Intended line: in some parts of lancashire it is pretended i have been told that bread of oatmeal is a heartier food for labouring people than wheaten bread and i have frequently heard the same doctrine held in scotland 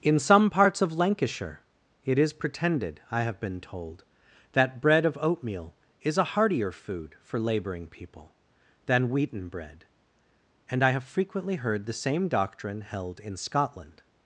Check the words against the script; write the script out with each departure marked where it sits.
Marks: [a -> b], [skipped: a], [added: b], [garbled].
in some parts of lancashire it is pretended i have been told that bread of oatmeal is a heartier food for labouring people than wheaten bread and i have frequently heard the same doctrine held in scotland